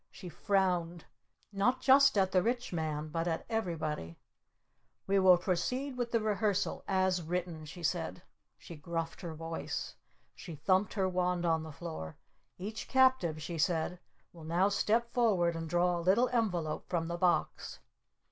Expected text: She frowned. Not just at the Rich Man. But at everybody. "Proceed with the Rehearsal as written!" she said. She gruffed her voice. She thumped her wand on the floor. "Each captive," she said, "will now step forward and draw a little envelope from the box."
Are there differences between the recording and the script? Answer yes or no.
yes